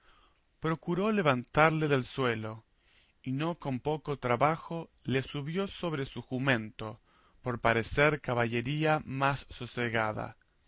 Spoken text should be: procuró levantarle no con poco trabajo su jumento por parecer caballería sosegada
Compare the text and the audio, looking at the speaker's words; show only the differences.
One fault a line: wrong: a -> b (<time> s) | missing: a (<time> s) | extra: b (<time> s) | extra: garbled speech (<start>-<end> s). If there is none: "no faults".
extra: del suelo y (1.9 s)
extra: le subió sobre (5.0 s)
extra: más (9.0 s)